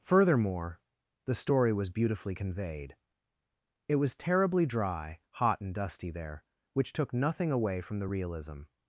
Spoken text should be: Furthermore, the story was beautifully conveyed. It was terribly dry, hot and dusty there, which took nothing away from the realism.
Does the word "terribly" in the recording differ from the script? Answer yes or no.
no